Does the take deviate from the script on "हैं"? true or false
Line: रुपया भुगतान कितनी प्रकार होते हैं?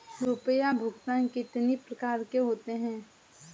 false